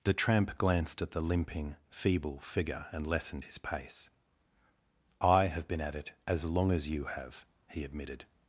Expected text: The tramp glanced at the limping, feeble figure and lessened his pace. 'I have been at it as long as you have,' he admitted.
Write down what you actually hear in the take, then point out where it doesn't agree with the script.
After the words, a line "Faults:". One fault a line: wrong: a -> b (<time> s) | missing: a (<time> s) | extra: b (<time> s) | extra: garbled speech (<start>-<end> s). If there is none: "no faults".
The tramp glanced at the limping, feeble figure and lessened his pace. 'I have been at it as long as you have,' he admitted.
Faults:
no faults